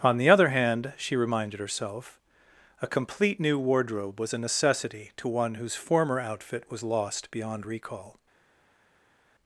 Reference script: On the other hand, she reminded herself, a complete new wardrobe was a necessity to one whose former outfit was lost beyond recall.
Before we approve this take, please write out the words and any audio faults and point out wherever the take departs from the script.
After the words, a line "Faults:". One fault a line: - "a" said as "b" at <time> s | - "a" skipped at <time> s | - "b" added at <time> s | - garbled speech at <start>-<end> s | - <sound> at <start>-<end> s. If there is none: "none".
On the other hand, she reminded herself, a complete new wardrobe was a necessity to one whose former outfit was lost beyond recall.
Faults:
none